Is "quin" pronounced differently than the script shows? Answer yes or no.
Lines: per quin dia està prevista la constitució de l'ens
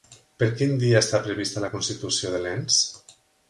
no